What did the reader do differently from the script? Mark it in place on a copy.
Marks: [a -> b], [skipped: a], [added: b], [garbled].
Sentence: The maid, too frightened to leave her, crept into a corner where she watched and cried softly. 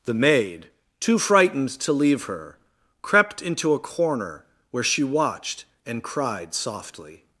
The maid, too frightened to leave her, crept into a corner where she watched and cried softly.